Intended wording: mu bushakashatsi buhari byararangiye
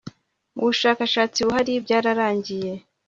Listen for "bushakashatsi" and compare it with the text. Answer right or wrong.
right